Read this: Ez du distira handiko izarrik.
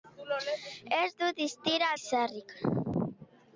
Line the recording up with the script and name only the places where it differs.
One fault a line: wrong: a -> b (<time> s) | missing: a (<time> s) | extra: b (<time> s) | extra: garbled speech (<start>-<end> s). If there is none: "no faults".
missing: handiko (1.9 s)